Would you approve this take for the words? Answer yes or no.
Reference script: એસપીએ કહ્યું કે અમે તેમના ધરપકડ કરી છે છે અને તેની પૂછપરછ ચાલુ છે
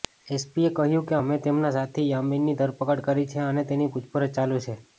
no